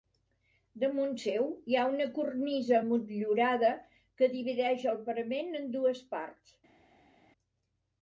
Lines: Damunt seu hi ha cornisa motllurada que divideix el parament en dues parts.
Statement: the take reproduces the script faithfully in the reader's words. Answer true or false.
false